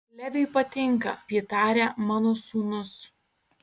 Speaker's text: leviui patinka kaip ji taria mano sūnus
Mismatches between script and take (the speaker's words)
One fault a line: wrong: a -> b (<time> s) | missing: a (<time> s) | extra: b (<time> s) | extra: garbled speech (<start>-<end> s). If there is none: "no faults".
missing: kaip (1.1 s)